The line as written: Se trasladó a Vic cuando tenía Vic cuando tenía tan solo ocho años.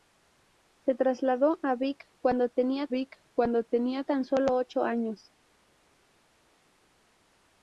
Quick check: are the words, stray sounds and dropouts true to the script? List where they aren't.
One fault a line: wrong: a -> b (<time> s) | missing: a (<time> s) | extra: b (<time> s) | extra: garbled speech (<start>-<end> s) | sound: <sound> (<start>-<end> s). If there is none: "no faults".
no faults